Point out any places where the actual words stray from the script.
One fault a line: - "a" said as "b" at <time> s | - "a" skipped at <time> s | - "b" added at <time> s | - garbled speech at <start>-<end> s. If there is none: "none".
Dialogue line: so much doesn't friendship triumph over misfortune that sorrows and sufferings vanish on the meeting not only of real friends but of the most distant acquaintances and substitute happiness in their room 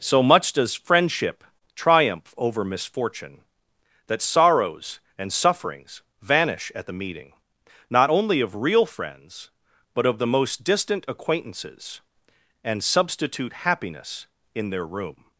- "doesn't" said as "does" at 0.5 s
- "on" said as "at" at 6.7 s